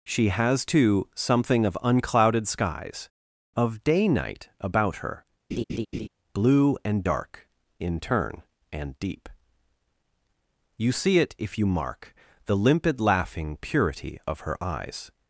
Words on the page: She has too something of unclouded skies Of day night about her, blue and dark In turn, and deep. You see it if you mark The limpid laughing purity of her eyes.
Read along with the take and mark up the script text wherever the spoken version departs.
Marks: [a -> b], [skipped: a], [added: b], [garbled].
She has too something of unclouded skies Of day night about her, blue and dark In turn, and deep. You see it if you mark The limpid laughing purity of her eyes.